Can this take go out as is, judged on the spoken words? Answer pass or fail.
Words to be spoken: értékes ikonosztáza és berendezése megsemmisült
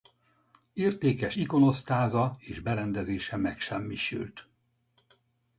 pass